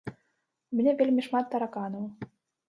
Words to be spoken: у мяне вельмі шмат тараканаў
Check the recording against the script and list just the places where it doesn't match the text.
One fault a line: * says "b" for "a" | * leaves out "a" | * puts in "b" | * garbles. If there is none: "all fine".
all fine